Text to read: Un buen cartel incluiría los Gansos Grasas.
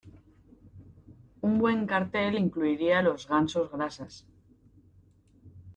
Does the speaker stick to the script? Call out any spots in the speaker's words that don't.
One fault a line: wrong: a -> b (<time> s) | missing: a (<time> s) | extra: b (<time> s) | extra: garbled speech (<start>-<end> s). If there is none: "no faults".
no faults